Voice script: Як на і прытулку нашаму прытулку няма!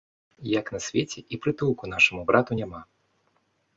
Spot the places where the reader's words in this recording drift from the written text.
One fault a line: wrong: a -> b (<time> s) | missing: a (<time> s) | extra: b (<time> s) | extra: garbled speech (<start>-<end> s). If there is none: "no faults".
extra: свеце (0.8 s)
wrong: прытулку -> брату (2.3 s)